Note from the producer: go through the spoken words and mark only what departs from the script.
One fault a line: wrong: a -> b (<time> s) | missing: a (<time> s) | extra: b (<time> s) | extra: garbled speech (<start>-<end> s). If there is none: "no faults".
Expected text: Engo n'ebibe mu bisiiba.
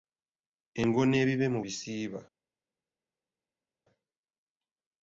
no faults